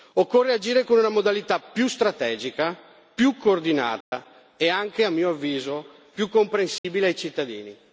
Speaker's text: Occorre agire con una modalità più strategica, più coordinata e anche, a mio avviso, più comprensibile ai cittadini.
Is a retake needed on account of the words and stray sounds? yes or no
yes